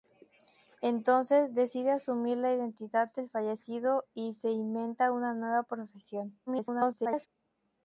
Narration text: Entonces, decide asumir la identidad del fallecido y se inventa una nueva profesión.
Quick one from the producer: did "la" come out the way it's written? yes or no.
yes